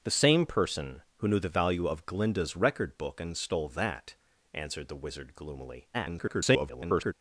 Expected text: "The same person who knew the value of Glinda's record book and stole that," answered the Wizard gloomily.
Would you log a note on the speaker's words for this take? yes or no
yes